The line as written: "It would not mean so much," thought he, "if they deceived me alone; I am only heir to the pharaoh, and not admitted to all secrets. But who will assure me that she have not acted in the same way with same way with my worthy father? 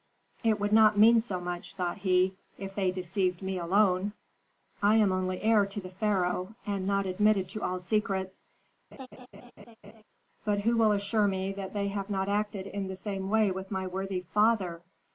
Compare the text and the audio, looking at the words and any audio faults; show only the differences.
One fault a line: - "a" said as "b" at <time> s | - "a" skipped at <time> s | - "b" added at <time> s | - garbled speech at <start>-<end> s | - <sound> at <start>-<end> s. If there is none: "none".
- laugh at 8.9-10.0 s
- "she" said as "they" at 11.7 s
- "same way with" skipped at 13.7 s